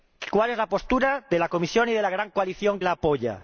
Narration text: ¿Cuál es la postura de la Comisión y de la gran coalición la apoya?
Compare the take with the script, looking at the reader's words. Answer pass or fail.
pass